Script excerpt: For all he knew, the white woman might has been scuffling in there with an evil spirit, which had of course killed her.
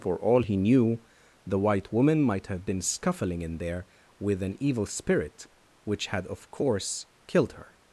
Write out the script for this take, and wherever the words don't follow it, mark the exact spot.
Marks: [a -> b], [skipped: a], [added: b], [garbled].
For all he knew, the white woman might [has -> have] been scuffling in there with an evil spirit, which had of course killed her.